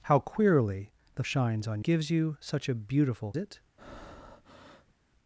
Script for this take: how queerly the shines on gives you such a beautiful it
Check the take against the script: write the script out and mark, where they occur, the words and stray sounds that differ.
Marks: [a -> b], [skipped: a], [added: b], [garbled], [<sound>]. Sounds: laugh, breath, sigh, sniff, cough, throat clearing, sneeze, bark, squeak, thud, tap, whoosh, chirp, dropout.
how queerly the shines on gives you such a beautiful it [breath]